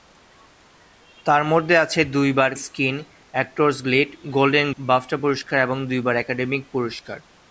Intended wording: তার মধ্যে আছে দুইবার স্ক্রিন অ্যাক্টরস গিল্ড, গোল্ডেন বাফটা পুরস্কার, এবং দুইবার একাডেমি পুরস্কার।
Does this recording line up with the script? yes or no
yes